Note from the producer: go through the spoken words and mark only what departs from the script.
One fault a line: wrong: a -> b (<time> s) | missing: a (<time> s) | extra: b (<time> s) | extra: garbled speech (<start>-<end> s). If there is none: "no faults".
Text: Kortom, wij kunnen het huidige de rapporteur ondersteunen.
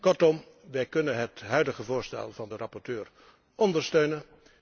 extra: voorstel van (1.8 s)